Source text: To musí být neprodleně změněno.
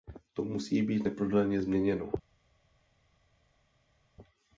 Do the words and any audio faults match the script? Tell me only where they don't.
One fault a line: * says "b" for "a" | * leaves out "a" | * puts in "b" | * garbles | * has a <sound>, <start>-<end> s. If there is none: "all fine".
all fine